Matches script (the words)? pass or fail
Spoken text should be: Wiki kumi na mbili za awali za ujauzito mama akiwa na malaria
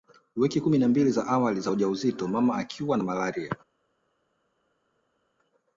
pass